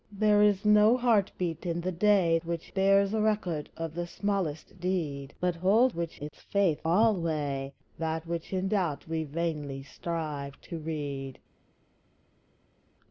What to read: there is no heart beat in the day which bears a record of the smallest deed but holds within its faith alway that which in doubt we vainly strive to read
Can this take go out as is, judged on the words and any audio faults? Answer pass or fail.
fail